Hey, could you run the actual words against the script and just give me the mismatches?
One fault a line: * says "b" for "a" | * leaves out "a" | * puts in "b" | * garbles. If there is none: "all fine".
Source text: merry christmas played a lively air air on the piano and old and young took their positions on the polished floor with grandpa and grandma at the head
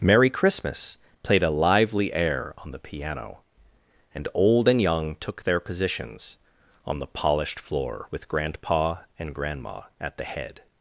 * leaves out "air"